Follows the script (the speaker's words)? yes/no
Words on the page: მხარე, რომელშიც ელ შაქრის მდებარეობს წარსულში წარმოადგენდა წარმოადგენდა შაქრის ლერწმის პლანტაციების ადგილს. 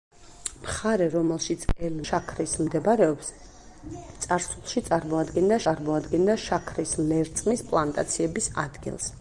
yes